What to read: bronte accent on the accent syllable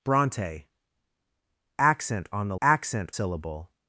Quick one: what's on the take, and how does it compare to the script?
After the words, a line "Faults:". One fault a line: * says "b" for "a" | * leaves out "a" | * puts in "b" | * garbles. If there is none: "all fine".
bronte accent on the accent syllable
Faults:
all fine